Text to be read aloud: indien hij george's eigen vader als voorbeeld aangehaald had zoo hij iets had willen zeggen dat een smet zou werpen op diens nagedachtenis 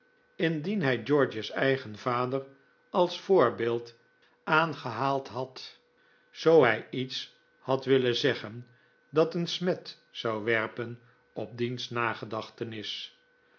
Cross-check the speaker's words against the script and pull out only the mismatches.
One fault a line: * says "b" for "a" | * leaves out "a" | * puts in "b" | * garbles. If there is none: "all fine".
all fine